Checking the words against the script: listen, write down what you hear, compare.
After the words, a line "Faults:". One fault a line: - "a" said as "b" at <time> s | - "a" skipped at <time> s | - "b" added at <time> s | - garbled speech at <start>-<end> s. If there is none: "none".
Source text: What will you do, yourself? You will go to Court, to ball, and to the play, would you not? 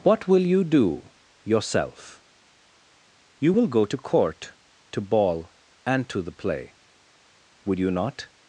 What will you do, yourself? You will go to Court, to ball, and to the play, would you not?
Faults:
none